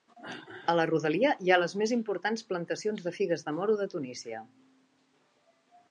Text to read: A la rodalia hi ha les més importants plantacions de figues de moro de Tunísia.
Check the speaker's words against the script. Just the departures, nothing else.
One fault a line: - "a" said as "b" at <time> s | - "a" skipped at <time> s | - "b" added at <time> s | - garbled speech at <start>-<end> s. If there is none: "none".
none